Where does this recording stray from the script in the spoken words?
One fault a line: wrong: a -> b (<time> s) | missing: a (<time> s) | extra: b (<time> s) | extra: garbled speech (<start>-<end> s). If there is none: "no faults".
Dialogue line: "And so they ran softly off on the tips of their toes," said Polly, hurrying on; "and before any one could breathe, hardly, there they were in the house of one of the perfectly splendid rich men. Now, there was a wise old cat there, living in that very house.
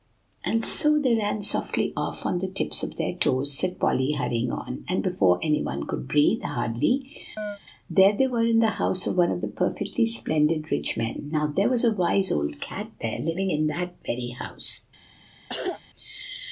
no faults